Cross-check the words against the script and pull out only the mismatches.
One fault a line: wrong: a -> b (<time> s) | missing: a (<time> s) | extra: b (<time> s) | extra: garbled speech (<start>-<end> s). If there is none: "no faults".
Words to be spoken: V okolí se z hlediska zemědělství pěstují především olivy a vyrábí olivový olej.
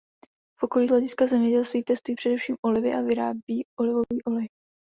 missing: se (0.9 s)